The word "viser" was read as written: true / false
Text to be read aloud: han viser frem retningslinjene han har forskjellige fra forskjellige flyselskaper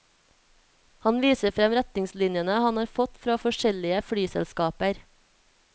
true